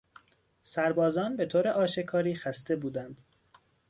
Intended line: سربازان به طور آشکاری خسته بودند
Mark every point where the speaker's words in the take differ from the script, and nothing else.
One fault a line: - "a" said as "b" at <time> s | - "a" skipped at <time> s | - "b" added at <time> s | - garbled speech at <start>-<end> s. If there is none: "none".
none